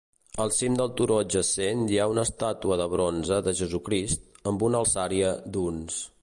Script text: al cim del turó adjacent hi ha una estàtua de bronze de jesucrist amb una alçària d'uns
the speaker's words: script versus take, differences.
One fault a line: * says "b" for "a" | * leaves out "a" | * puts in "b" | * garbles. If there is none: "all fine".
all fine